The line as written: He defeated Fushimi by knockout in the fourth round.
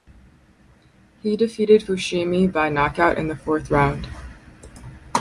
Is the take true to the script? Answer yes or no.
yes